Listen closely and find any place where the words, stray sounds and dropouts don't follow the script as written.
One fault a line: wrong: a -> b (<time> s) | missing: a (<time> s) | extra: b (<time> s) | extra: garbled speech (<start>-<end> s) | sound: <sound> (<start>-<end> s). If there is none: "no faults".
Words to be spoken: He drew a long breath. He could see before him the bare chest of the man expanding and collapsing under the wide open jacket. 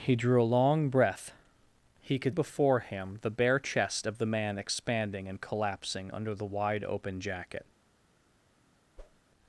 missing: see (2.4 s)
sound: whoosh (9.0-9.2 s)